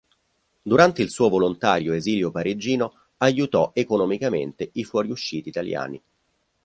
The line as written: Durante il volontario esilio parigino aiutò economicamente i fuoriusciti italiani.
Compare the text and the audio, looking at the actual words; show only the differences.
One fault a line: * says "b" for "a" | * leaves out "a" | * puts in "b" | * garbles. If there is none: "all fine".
* puts in "suo"